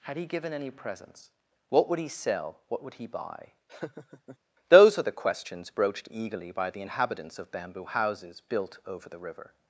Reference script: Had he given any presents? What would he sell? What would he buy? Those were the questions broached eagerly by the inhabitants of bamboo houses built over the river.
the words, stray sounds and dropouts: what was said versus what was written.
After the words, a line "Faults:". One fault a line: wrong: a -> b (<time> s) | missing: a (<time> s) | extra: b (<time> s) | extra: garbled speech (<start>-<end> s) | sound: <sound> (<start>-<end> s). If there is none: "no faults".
Had he given any presents? What would he sell? What would he buy? Those are the questions broached eagerly by the inhabitants of bamboo houses built over the river.
Faults:
sound: laugh (3.7-4.4 s)
wrong: were -> are (5.0 s)